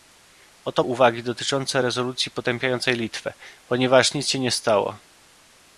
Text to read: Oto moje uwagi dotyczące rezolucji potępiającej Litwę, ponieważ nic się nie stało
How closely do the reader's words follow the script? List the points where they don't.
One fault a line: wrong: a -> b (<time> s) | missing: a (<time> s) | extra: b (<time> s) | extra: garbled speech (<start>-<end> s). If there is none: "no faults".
missing: moje (0.8 s)